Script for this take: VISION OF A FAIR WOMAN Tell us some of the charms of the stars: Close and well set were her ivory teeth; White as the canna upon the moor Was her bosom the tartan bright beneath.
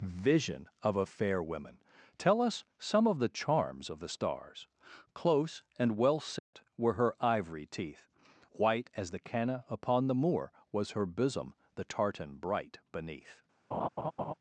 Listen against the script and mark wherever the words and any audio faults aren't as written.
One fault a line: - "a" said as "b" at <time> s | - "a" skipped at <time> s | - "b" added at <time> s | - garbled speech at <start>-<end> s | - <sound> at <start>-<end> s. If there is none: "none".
- dropout at 6.4-6.5 s
- laugh at 13.7-14.3 s